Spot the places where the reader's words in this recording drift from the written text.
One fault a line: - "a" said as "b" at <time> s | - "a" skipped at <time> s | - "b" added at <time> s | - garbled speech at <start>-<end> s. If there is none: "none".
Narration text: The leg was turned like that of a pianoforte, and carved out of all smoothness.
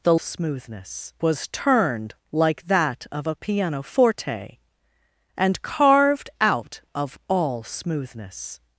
- "leg" said as "smoothness" at 0.2 s